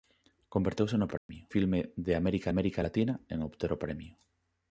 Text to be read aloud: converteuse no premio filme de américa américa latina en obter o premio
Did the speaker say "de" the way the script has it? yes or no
yes